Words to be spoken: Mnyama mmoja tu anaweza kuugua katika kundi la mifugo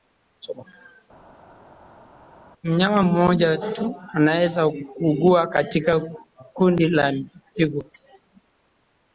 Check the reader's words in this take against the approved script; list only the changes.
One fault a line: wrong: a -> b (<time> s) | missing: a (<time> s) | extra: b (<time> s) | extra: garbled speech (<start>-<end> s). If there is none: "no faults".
no faults